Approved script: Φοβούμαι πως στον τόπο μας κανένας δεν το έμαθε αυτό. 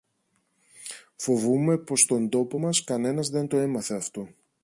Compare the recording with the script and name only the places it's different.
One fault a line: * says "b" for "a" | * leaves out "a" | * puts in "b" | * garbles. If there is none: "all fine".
all fine